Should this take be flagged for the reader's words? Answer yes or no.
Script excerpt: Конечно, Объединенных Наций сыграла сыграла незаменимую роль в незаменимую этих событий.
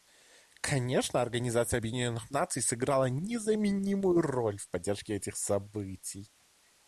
yes